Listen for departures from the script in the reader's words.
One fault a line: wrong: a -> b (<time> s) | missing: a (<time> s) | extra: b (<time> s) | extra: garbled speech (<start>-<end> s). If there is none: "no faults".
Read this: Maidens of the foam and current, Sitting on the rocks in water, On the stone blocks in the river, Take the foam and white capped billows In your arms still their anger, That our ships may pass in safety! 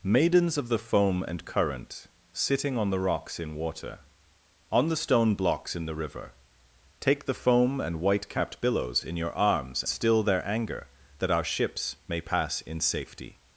no faults